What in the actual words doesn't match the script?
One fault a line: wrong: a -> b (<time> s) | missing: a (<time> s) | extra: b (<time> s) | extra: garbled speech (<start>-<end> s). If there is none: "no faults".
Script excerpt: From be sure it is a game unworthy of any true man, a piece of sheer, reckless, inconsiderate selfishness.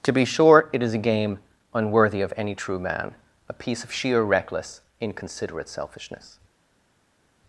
wrong: From -> To (0.0 s)